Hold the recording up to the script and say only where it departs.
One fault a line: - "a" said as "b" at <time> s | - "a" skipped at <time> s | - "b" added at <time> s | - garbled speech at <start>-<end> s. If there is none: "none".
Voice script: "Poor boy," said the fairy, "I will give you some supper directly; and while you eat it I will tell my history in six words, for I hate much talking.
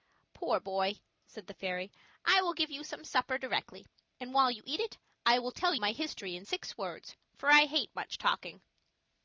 none